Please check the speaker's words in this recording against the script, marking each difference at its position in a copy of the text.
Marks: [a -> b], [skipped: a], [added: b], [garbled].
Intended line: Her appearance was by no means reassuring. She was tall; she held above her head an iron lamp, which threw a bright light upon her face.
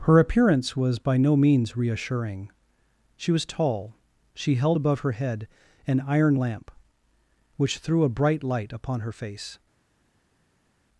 Her appearance was by no means reassuring. She was tall; she held above her head an iron lamp, which threw a bright light upon her face.